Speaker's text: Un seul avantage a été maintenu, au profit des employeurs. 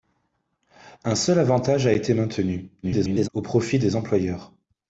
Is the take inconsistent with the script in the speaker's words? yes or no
yes